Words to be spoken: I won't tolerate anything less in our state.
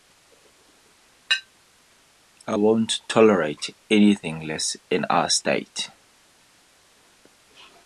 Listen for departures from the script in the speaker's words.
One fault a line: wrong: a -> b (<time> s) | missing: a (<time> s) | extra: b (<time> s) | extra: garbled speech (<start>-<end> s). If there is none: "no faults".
no faults